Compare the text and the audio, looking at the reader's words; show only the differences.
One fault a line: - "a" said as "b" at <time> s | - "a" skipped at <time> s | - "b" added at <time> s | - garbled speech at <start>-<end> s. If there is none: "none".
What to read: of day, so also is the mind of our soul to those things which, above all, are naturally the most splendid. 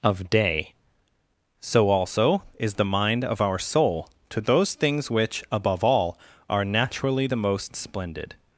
none